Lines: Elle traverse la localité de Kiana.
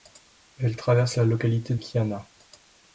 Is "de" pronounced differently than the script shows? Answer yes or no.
yes